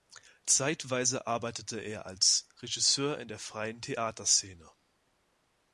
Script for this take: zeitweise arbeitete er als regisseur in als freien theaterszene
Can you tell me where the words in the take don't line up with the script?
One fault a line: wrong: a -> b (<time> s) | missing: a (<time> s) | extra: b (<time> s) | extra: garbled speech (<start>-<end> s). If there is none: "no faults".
wrong: als -> der (3.3 s)